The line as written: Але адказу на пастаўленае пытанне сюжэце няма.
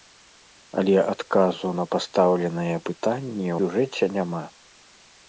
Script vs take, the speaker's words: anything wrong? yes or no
no